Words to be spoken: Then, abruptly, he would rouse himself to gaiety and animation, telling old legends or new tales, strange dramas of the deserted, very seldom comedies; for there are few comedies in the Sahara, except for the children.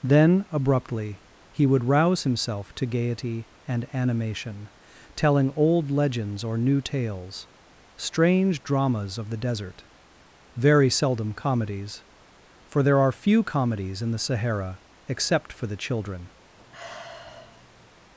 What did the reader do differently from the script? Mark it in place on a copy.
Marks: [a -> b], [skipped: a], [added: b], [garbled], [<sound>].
Then, abruptly, he would rouse himself to gaiety and animation, telling old legends or new tales, strange dramas of the [deserted, -> desert] very seldom comedies; for there are few comedies in the Sahara, except for the children. [sigh]